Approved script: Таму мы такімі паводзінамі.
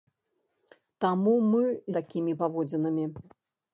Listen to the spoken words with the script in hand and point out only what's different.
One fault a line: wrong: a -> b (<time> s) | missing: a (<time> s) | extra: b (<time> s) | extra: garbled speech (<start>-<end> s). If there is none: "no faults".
no faults